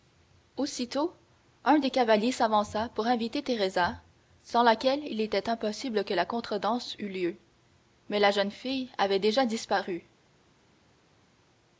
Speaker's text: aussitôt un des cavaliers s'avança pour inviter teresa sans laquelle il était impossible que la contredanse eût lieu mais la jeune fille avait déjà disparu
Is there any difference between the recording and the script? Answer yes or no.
no